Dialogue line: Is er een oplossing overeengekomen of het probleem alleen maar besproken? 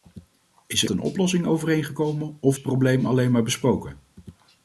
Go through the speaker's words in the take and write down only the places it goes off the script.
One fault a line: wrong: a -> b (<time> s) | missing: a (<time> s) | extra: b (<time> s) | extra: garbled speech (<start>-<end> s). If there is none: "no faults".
no faults